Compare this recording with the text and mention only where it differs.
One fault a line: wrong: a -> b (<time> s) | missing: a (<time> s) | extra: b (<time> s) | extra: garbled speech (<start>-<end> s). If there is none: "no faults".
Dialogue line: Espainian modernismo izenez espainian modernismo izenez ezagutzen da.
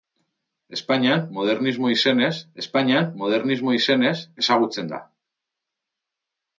no faults